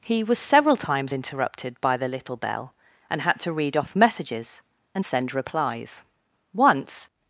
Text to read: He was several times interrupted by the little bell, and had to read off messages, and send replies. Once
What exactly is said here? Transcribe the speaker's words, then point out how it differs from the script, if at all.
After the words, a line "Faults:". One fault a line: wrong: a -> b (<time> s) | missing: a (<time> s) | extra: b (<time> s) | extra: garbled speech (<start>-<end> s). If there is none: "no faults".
He was several times interrupted by the little bell, and had to read off messages, and send replies. Once
Faults:
no faults